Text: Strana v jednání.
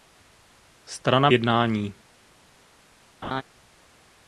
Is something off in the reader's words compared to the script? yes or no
no